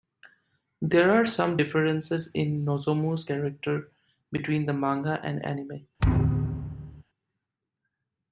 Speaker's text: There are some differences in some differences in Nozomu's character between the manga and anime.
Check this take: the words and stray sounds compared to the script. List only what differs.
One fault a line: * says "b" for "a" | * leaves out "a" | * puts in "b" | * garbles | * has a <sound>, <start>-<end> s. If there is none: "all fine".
* leaves out "some differences in"
* has a thud, 6.0-7.0 s